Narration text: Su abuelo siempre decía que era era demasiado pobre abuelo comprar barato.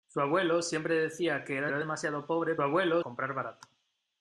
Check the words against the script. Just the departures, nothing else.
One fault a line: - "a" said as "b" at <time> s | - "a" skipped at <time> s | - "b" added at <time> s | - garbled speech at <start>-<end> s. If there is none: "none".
none